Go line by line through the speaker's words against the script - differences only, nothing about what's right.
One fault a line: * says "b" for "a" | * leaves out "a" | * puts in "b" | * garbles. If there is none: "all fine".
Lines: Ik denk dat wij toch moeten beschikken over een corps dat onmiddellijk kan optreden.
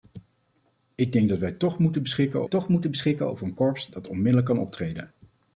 * puts in "toch moeten beschikken"